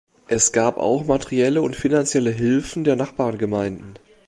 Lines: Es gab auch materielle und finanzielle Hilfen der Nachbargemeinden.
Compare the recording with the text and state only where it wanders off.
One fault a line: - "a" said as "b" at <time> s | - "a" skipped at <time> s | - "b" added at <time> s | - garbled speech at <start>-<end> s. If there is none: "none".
none